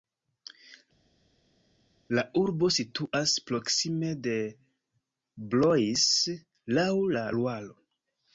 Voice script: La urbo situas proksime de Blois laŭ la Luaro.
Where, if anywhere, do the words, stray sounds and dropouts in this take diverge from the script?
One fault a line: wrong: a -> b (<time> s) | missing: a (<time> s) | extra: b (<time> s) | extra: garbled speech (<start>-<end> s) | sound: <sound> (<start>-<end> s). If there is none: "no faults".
no faults